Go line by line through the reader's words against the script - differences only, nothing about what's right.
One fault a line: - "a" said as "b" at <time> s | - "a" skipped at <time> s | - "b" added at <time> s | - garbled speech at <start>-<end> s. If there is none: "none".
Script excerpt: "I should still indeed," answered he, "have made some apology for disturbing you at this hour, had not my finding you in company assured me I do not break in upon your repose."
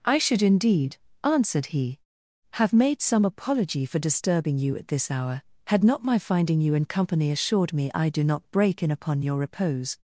- "still" skipped at 0.4 s